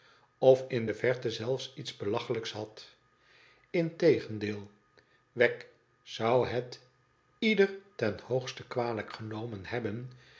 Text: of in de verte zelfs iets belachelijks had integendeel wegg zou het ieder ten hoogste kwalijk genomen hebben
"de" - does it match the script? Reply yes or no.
yes